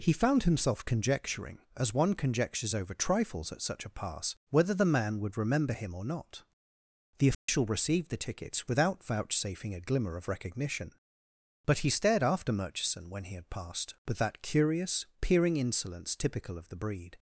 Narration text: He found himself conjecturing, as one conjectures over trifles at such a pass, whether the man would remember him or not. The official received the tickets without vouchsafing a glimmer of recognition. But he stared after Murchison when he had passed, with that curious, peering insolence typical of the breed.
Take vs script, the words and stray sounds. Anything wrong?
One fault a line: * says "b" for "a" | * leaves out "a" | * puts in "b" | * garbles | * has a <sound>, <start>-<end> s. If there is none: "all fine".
* has a dropout, 7.3-7.5 s